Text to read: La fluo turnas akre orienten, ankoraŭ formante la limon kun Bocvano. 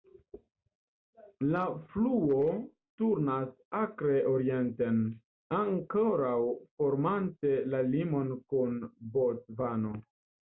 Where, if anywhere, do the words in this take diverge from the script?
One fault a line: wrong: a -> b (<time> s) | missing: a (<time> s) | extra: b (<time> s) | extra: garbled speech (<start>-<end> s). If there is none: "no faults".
no faults